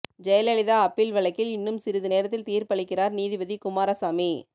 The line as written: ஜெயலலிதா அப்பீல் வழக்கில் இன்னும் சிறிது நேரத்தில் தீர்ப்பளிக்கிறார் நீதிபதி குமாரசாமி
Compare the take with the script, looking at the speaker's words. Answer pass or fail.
pass